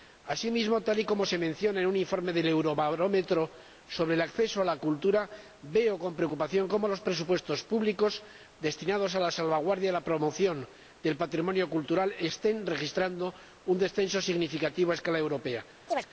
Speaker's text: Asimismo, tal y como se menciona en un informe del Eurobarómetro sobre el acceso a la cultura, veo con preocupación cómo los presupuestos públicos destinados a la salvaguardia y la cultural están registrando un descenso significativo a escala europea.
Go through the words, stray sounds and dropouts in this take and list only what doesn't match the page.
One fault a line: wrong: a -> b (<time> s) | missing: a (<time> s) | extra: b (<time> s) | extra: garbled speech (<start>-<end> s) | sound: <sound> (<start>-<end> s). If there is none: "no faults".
extra: promoción del patrimonio (10.0 s)
sound: chirp (15.9-16.1 s)